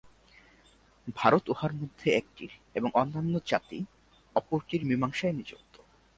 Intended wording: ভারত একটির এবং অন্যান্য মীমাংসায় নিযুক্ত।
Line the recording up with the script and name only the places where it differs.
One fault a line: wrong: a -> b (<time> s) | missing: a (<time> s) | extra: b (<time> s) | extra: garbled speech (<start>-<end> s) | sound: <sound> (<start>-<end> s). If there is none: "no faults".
extra: উহার মধ্যে (1.5 s)
extra: জাতি অপরটির (3.5 s)